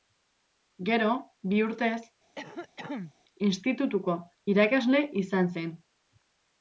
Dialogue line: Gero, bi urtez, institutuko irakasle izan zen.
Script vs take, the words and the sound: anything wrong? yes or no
yes